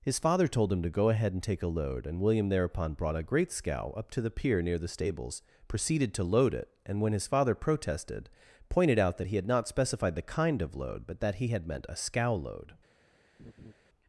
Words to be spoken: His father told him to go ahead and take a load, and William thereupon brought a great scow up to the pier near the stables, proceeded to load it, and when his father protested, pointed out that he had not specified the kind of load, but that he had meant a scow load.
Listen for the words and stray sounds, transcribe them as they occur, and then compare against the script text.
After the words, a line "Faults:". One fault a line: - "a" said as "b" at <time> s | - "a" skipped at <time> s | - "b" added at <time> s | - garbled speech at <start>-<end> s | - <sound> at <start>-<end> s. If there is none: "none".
His father told him to go ahead and take a load, and William thereupon brought a great scow up to the pier near the stables, proceeded to load it, and when his father protested, pointed out that he had not specified the kind of load, but that he had meant a scow load.
Faults:
- laugh at 13.4-13.7 s